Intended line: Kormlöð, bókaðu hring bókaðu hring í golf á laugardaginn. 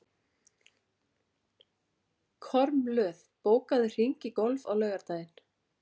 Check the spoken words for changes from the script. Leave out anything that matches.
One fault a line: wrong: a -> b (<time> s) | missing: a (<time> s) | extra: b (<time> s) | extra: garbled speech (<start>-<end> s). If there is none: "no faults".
missing: bókaðu hring (4.3 s)